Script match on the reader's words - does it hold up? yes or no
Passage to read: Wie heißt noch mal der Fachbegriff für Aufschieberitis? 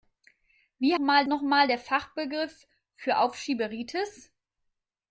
no